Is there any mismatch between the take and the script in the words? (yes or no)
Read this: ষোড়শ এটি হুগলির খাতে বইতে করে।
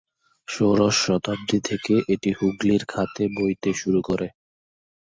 yes